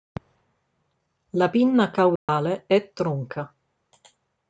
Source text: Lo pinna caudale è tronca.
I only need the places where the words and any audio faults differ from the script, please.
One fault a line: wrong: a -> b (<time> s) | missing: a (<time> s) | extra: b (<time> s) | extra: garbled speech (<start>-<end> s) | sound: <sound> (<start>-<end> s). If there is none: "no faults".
wrong: Lo -> La (1.3 s)
sound: dropout (2.2-2.3 s)